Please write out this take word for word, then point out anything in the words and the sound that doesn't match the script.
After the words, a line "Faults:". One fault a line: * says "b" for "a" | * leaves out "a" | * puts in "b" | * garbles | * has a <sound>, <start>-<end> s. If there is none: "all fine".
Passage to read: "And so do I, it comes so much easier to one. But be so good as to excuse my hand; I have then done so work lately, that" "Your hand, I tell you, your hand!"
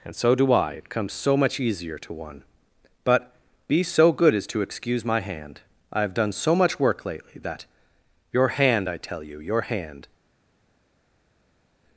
"And so do I, it comes so much easier to one. But be so good as to excuse my hand; I have done so much work lately, that" "Your hand, I tell you, your hand!"
Faults:
* leaves out "then"
* puts in "much"